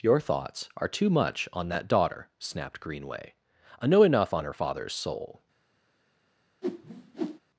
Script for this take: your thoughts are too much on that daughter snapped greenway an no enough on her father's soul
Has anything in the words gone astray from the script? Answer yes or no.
yes